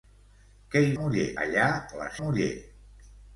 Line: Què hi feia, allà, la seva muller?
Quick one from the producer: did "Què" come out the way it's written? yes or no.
yes